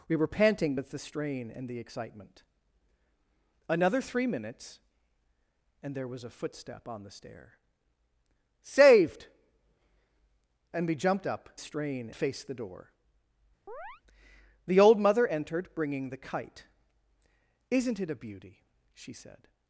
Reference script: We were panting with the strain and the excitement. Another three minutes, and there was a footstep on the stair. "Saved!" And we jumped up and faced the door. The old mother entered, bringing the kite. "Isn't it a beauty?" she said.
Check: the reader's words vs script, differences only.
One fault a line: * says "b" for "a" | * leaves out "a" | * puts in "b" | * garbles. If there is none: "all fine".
* says "strain" for "and"